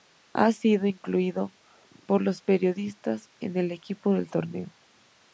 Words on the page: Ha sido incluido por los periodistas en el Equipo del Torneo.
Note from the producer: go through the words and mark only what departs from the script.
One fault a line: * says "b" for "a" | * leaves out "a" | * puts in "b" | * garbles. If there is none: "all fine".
all fine